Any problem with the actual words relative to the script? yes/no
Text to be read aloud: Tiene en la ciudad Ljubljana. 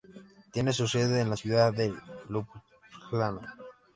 yes